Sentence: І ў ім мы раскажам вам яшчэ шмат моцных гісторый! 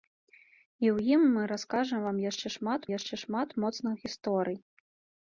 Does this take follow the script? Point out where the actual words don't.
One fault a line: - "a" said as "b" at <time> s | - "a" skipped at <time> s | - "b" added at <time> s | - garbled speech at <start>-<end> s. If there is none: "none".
- "яшчэ шмат" added at 3.0 s